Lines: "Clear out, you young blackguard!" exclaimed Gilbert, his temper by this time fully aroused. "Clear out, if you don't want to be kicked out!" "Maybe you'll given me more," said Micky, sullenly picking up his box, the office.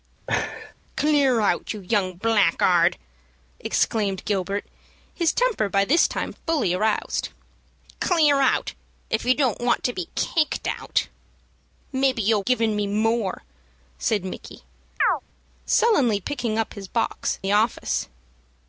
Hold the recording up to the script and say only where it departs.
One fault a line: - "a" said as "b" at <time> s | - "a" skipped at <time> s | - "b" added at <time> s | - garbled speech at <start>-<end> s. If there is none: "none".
none